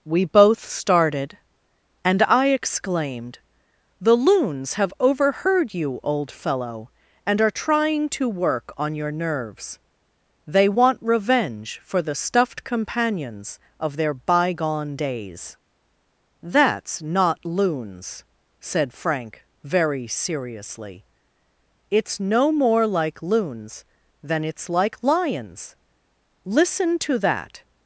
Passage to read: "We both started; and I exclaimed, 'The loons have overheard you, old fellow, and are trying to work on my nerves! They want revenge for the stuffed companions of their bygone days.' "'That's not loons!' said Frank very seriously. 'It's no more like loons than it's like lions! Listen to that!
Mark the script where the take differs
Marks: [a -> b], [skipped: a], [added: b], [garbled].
"We both started; and I exclaimed, 'The loons have overheard you, old fellow, and are trying to work on [my -> your] nerves! They want revenge for the stuffed companions of their bygone days.' "'That's not loons!' said Frank very seriously. 'It's no more like loons than it's like lions! Listen to that!